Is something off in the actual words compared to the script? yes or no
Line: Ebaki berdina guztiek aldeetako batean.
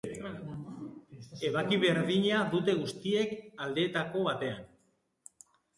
yes